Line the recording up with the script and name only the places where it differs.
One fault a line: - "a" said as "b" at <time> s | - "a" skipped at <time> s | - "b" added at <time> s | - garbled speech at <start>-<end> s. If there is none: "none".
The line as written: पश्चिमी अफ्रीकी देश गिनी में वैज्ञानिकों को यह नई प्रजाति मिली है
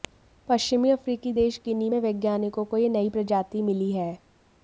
none